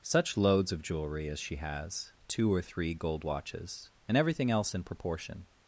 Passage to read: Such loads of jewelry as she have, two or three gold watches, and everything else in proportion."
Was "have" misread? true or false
true